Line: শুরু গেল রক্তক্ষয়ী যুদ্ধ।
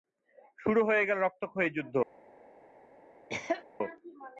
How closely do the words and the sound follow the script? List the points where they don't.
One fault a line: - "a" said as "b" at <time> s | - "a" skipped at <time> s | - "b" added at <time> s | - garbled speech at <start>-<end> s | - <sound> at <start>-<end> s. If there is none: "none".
- "হয়ে" added at 0.8 s
- cough at 3.3-3.6 s